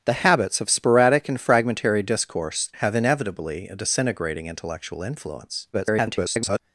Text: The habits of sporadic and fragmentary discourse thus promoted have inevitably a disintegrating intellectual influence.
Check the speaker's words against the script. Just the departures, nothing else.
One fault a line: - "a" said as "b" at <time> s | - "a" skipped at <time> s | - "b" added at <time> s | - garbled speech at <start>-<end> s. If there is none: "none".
- "thus promoted" skipped at 2.7 s
- garbled speech at 5.7-6.6 s